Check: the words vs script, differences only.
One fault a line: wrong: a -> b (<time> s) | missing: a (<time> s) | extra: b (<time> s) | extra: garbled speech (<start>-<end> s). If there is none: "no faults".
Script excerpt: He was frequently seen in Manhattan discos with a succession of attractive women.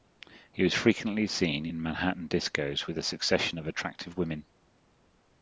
no faults